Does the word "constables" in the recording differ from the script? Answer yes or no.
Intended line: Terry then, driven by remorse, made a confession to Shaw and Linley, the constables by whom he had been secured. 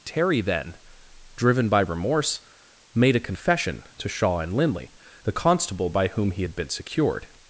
yes